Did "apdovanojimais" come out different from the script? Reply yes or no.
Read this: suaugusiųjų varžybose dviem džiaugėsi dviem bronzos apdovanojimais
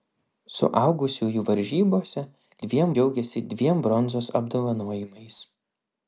no